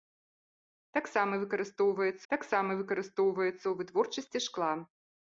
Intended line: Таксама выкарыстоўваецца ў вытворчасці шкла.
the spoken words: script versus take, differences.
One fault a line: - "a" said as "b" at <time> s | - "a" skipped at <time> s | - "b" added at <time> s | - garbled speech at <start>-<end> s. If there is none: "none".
- "таксама выкарыстоўваецца" added at 2.3 s